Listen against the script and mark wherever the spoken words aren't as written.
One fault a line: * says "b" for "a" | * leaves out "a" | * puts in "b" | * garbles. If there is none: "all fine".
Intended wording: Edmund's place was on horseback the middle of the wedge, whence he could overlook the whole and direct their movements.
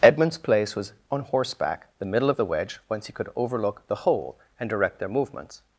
all fine